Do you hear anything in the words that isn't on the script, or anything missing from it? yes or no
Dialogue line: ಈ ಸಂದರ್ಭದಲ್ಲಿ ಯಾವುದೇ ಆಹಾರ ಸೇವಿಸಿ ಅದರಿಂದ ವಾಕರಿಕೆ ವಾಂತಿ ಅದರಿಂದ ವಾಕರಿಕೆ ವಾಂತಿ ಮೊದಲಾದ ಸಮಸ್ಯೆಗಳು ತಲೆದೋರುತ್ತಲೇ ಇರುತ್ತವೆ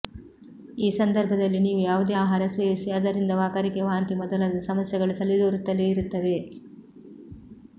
yes